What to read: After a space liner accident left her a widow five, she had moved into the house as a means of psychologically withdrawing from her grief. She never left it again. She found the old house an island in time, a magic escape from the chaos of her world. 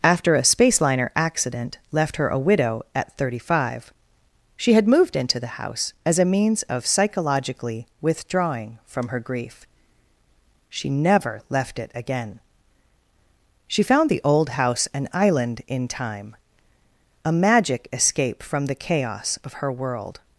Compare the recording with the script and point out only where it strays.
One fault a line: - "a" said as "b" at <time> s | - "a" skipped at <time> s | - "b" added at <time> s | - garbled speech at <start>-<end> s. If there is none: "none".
- "at thirty" added at 3.0 s